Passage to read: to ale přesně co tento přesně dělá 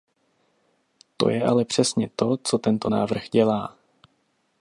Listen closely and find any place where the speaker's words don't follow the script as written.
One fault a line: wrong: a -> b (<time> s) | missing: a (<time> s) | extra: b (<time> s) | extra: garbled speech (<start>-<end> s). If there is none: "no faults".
extra: je (1.3 s)
extra: to (2.1 s)
wrong: přesně -> návrh (2.9 s)